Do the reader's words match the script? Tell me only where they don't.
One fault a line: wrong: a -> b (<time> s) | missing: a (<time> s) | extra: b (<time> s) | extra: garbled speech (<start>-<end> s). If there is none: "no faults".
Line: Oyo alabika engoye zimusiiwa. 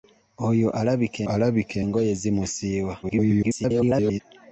extra: alabika (1.3 s)
extra: garbled speech (3.0-4.2 s)